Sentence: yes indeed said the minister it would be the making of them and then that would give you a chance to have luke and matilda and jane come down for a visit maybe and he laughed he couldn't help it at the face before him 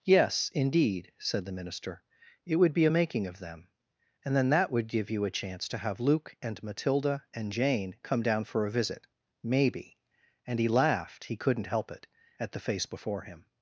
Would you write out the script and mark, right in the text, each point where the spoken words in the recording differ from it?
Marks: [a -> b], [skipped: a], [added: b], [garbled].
yes indeed said the minister it would be [the -> a] making of them and then that would give you a chance to have luke and matilda and jane come down for a visit maybe and he laughed he couldn't help it at the face before him